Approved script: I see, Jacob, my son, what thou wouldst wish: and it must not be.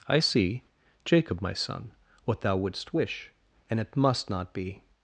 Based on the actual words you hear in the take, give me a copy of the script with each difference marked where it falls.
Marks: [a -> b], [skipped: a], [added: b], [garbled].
I see, Jacob, my son, what thou wouldst wish: and it must not be.